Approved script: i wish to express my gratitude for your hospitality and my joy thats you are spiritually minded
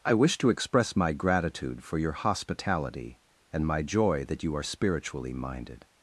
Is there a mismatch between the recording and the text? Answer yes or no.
yes